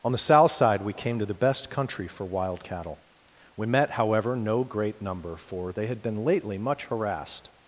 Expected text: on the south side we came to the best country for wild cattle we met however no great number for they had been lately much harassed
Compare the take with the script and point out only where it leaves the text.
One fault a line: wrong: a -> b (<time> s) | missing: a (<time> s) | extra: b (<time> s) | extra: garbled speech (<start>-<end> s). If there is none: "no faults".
no faults